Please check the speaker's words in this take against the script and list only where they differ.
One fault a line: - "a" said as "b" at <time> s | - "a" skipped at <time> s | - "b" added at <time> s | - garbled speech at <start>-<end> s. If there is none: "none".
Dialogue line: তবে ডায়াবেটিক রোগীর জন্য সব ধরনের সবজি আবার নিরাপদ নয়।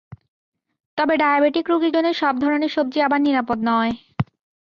none